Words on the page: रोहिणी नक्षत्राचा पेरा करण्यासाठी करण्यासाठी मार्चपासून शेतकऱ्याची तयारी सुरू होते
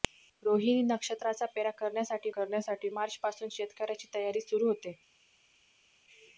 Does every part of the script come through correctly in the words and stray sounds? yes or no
yes